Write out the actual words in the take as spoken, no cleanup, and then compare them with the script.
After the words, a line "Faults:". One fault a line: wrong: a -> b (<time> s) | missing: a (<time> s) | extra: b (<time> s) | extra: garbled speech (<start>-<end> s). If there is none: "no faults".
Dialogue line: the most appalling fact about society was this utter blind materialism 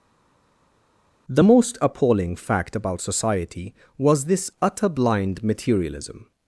the most appalling fact about society was this utter blind materialism
Faults:
no faults